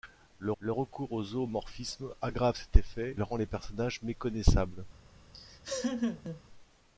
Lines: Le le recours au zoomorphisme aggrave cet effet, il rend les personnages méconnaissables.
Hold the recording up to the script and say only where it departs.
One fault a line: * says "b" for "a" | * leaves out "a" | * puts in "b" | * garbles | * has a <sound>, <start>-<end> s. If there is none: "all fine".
* has a laugh, 5.3-6.4 s